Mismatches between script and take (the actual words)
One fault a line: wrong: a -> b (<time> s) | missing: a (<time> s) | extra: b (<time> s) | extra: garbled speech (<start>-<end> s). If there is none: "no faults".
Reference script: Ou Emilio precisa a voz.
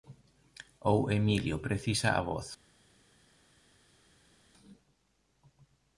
no faults